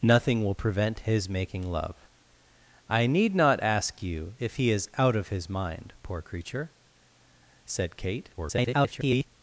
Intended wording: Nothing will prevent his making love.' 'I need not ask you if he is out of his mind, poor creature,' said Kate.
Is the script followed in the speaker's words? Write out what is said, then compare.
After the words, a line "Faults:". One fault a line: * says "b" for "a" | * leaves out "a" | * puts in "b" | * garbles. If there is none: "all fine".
Nothing will prevent his making love.' 'I need not ask you if he is out of his mind, poor creature,' said Kate. [garbled]
Faults:
* garbles